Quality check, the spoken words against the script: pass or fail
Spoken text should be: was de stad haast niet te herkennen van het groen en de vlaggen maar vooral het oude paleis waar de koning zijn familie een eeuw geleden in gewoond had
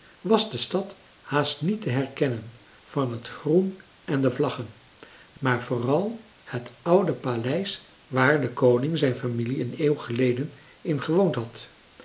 pass